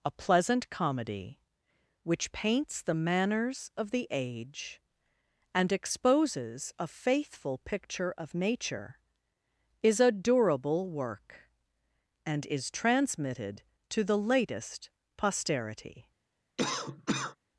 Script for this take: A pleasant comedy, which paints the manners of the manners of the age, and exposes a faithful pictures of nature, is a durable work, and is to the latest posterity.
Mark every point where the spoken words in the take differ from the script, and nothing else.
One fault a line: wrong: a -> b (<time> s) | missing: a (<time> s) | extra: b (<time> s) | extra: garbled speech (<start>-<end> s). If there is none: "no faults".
missing: manners of the (4.1 s)
wrong: pictures -> picture (7.6 s)
extra: transmitted (12.7 s)